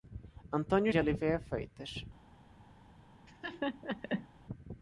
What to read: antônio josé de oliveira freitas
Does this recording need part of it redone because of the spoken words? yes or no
yes